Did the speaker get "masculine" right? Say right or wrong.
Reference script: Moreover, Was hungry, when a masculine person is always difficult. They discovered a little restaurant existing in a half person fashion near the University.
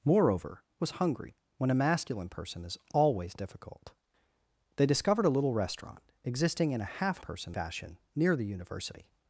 right